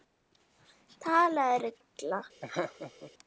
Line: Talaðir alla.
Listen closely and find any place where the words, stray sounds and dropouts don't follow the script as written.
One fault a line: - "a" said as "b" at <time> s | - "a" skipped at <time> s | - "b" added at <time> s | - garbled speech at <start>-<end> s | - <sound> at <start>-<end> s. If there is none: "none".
- laugh at 2.4-3.1 s